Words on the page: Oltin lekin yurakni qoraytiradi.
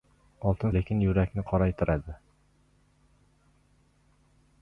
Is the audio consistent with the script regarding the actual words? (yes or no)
yes